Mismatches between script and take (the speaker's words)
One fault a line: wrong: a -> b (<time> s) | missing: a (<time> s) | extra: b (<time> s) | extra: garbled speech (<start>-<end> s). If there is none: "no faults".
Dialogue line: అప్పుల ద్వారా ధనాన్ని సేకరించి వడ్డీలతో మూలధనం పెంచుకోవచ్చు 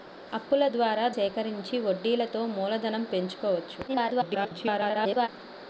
missing: ధనాన్ని (1.0 s)
extra: garbled speech (3.9-5.3 s)